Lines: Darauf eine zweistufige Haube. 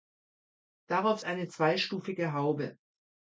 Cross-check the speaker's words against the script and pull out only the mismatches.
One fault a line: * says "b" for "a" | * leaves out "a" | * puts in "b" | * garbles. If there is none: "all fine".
all fine